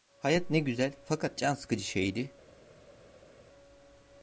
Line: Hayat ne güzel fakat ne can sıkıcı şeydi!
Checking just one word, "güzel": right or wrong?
right